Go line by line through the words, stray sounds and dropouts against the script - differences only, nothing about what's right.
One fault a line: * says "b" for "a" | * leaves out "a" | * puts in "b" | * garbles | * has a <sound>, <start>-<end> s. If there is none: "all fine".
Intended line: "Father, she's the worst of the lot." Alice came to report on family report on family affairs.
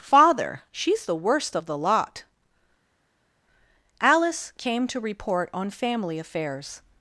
* leaves out "report on family"